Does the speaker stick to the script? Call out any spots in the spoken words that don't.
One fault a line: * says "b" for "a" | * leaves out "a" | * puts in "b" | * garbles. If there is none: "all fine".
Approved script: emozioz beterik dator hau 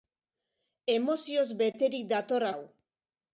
all fine